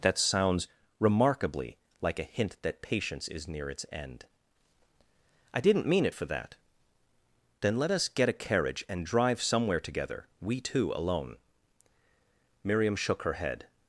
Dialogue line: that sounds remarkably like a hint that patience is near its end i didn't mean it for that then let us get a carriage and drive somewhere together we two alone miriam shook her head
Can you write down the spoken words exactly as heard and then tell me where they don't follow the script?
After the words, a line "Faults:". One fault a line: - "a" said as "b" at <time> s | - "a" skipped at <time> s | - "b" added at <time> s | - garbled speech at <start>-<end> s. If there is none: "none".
that sounds remarkably like a hint that patience is near its end i didn't mean it for that then let us get a carriage and drive somewhere together we two alone miriam shook her head
Faults:
none